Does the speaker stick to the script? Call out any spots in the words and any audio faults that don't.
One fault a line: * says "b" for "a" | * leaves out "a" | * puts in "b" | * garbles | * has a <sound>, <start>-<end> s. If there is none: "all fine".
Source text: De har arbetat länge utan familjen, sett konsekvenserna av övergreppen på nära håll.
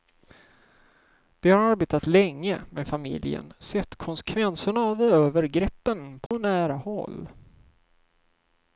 * says "med" for "utan"
* has a dropout, 6.3-6.3 s